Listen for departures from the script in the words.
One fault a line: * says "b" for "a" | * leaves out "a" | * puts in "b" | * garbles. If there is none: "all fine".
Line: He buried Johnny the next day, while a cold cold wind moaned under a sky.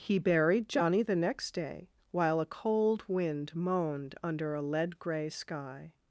* leaves out "cold"
* puts in "lead gray"